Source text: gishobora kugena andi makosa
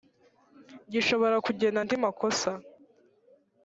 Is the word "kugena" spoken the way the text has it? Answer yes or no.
yes